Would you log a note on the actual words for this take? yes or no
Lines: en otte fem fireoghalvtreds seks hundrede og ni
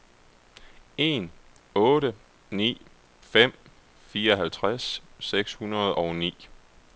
yes